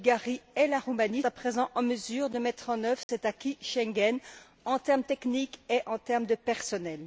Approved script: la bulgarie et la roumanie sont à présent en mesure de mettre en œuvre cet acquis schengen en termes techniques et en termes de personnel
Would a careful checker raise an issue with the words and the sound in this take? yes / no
yes